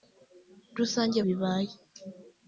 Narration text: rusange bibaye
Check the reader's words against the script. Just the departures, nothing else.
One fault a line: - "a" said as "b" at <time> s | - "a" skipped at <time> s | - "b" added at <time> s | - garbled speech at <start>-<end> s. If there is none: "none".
none